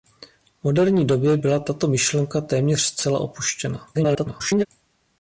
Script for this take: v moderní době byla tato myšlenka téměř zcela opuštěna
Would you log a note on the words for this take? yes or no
yes